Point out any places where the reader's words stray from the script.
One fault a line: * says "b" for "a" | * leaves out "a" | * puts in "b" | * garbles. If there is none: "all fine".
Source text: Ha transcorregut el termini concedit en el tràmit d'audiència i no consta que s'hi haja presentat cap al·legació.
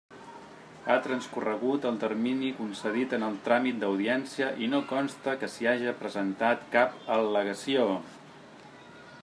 all fine